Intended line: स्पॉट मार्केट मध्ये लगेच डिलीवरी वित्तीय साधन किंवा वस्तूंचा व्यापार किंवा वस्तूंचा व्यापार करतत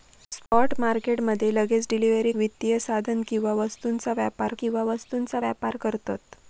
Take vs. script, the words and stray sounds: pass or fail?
fail